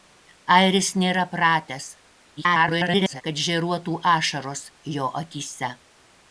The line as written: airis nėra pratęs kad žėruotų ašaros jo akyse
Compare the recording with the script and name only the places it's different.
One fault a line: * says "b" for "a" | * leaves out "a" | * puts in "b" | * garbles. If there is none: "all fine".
* garbles